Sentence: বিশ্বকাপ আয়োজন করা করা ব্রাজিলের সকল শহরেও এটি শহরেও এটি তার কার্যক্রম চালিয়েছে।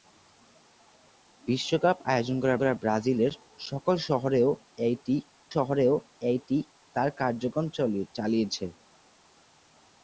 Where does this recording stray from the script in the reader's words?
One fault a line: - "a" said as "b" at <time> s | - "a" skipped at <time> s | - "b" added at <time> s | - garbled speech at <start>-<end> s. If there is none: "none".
none